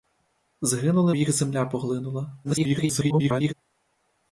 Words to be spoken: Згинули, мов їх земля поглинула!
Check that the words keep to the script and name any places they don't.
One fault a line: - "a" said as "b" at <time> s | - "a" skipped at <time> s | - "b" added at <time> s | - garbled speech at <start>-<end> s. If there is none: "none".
- "мов" skipped at 1.1 s
- garbled speech at 2.4-3.5 s